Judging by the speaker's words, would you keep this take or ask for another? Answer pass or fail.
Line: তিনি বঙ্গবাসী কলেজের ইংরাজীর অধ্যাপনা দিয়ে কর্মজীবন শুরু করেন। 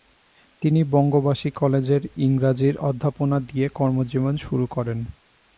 pass